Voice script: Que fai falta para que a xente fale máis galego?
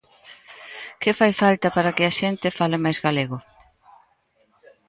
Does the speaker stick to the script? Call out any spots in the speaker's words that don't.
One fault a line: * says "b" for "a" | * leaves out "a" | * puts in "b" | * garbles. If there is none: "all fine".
all fine